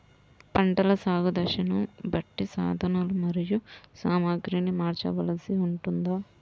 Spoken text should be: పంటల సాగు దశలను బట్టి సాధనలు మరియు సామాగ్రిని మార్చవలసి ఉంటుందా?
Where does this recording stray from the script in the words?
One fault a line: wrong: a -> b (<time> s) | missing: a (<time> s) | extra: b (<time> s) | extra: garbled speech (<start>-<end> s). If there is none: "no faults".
no faults